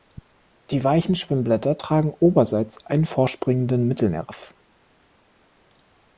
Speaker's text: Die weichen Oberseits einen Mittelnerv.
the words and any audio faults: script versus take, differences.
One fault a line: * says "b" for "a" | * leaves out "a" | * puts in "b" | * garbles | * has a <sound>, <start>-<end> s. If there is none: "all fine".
* puts in "Schwimmblätter tragen"
* puts in "vorspringenden"